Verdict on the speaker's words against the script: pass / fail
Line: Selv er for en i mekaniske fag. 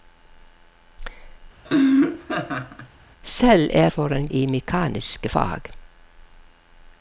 pass